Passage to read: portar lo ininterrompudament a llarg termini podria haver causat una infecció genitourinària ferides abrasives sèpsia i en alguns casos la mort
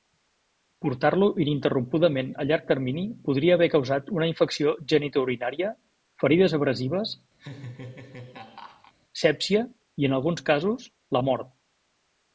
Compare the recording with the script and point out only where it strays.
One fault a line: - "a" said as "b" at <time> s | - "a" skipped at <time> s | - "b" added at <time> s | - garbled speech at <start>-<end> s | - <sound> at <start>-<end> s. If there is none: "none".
- laugh at 7.4-8.9 s